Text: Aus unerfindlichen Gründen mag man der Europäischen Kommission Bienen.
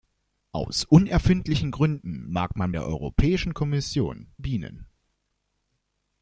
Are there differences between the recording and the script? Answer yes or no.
no